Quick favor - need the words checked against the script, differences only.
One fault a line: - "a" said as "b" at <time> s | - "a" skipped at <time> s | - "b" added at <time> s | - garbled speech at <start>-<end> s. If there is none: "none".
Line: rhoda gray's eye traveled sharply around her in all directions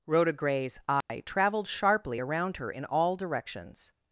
none